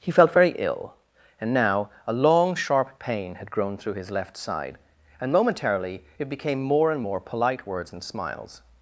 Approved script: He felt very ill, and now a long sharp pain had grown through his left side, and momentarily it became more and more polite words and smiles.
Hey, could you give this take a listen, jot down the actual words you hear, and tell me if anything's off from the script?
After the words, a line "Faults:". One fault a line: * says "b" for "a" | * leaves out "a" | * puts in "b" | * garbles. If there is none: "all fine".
He felt very ill, and now a long sharp pain had grown through his left side, and momentarily it became more and more polite words and smiles.
Faults:
all fine